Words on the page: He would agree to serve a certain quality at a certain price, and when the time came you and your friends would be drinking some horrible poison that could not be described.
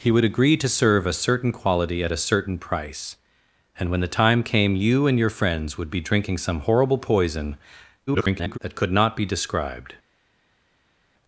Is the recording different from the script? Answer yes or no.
yes